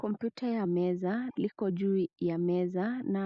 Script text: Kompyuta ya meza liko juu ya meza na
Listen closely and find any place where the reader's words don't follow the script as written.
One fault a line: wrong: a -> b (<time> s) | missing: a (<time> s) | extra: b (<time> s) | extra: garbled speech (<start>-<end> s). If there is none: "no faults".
no faults